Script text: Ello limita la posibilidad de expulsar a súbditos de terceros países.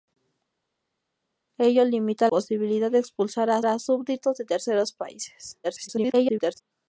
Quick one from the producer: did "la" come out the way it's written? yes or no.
no